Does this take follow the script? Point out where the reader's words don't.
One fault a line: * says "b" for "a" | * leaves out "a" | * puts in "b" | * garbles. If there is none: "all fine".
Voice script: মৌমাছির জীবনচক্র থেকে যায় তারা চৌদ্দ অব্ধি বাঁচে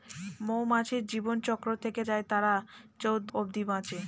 all fine